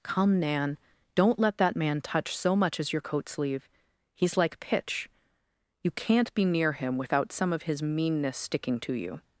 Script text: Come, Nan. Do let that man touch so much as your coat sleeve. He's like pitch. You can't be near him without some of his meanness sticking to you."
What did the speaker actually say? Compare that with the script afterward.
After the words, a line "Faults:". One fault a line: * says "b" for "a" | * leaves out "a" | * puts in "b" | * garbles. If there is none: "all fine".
Come, Nan. Don't let that man touch so much as your coat sleeve. He's like pitch. You can't be near him without some of his meanness sticking to you."
Faults:
* says "Don't" for "Do"